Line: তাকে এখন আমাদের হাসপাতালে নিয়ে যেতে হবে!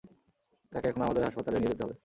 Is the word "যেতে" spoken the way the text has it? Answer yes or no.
yes